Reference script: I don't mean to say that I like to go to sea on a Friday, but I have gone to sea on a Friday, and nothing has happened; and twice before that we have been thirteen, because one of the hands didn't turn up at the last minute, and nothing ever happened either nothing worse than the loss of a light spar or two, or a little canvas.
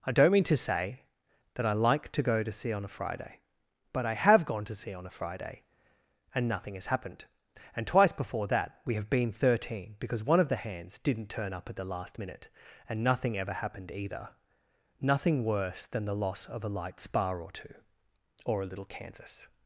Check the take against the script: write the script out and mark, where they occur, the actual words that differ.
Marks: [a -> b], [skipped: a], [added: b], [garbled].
I don't mean to say that I like to go to sea on a Friday, but I have gone to sea on a Friday, and nothing has happened; and twice before that we have been thirteen, because one of the hands didn't turn up at the last minute, and nothing ever happened either nothing worse than the loss of a light spar or two, or a little canvas.